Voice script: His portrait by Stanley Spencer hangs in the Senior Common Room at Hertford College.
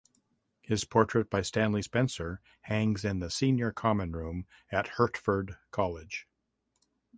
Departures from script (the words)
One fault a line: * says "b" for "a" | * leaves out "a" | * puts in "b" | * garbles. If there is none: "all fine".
all fine